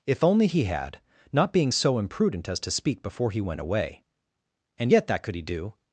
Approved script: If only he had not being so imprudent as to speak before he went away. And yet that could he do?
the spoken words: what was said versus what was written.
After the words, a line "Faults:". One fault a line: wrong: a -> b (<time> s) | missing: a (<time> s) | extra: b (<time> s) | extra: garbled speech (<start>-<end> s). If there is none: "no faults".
If only he had not being so imprudent as to speak before he went away. And yet that could he do?
Faults:
no faults